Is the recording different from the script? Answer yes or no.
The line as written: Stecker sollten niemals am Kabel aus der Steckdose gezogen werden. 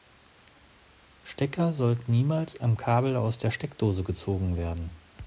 no